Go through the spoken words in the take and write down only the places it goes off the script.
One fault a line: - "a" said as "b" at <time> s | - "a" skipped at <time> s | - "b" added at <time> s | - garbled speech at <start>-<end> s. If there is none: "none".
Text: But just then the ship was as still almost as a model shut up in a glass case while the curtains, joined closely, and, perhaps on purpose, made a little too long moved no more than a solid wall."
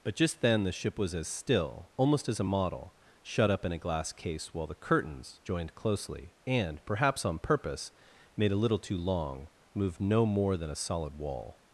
none